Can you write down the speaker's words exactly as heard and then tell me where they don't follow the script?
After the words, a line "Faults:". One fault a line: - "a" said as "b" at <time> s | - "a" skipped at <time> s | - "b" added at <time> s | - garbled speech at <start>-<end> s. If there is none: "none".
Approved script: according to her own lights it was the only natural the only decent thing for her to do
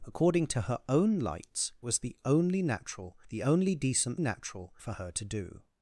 according to her own lights was the only natural the only decent natural for her to do
Faults:
- "it" skipped at 1.7 s
- "thing" said as "natural" at 4.2 s